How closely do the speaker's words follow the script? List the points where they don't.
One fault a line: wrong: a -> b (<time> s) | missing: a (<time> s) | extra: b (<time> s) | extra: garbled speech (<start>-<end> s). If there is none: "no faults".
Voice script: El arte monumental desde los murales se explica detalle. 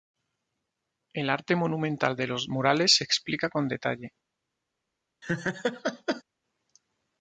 wrong: desde -> de (2.1 s)
extra: con (3.5 s)